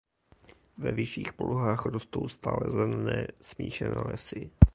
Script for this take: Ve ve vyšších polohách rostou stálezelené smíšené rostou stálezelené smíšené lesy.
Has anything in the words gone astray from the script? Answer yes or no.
yes